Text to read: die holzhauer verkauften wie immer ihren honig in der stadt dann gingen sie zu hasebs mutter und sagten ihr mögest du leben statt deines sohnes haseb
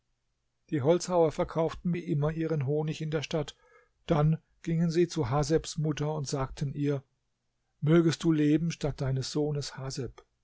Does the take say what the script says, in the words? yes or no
yes